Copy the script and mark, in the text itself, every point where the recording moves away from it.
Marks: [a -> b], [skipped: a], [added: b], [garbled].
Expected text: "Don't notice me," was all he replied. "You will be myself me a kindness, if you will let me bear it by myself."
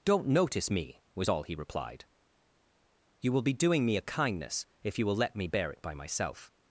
"Don't notice me," was all he replied. "You will be [myself -> doing] me a kindness, if you will let me bear it by myself."